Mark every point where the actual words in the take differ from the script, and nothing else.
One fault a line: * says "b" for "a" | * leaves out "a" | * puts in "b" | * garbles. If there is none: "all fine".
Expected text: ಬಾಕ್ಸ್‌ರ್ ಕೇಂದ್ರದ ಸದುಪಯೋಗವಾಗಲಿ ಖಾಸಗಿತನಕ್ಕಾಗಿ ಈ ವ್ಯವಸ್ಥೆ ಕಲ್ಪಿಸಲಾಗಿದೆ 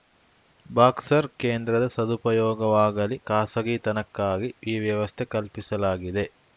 all fine